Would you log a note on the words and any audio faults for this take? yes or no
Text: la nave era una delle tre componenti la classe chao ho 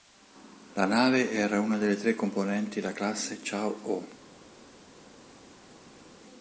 no